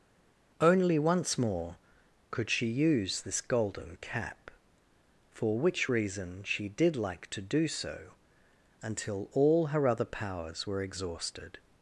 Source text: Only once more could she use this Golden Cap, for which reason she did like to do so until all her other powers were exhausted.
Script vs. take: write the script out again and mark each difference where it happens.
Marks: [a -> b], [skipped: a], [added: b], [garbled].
Only once more could she use this Golden Cap, for which reason she did like to do so until all her other powers were exhausted.